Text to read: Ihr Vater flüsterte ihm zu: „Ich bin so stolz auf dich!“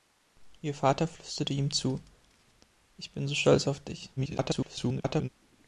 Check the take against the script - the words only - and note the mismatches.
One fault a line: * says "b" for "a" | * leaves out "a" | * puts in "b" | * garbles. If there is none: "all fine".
* garbles